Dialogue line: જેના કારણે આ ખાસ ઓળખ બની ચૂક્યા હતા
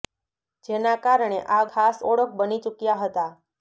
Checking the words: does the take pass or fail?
pass